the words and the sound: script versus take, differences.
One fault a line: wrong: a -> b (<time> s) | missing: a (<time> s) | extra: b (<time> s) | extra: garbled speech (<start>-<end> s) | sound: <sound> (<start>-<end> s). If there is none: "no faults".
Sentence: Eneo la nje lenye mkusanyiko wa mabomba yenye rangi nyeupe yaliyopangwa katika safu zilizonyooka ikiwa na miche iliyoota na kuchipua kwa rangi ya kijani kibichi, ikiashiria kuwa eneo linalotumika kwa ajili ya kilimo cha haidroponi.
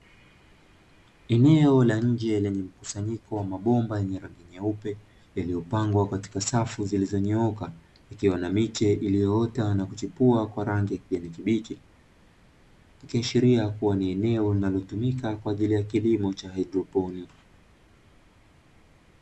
extra: ni (14.0 s)